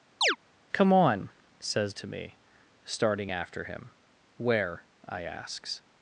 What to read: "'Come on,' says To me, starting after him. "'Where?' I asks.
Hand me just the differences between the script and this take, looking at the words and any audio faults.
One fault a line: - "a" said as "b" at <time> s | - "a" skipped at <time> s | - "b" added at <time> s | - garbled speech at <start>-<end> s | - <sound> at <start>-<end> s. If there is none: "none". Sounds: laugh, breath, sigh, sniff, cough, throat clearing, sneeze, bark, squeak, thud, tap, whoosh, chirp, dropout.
- chirp at 0.2-0.4 s